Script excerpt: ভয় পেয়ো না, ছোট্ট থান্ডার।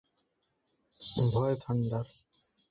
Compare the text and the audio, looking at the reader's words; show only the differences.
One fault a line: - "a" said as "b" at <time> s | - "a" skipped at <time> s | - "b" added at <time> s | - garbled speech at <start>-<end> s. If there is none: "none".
- "পেয়ো না ছোট্ট" skipped at 1.6 s